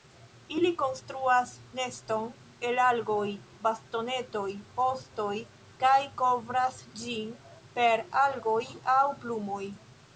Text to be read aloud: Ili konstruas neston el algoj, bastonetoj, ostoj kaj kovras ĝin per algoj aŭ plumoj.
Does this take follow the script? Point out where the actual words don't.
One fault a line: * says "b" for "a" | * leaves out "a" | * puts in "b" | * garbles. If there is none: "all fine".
all fine